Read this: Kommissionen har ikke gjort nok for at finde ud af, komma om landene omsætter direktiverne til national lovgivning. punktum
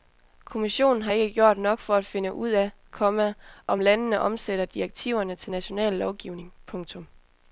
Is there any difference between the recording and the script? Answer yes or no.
no